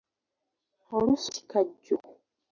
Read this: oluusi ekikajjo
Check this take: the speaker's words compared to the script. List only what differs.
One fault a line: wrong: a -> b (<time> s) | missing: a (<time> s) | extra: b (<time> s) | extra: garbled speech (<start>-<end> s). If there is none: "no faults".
no faults